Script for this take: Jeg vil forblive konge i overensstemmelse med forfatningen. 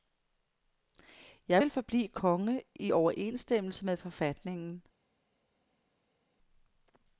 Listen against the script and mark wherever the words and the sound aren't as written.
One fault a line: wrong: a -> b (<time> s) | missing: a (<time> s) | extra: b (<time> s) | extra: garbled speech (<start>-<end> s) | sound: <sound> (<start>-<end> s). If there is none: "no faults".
no faults